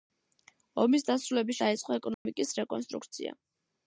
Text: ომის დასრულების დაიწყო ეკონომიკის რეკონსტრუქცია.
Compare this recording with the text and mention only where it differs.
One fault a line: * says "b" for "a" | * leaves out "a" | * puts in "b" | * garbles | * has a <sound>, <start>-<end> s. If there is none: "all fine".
* has a dropout, 2.1-2.3 s